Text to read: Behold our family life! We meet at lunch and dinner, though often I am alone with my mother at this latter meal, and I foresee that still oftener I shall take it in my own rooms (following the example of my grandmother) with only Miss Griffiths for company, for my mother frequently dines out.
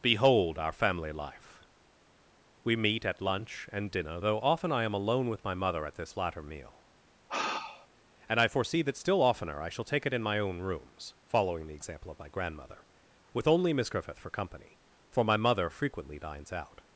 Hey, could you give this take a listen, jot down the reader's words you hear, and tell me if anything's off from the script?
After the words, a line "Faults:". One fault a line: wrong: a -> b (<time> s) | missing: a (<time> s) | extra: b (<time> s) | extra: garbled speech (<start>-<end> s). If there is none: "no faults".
Behold our family life! We meet at lunch and dinner, though often I am alone with my mother at this latter meal, and I foresee that still oftener I shall take it in my own rooms (following the example of my grandmother) with only Miss Griffith for company, for my mother frequently dines out.
Faults:
wrong: Griffiths -> Griffith (13.9 s)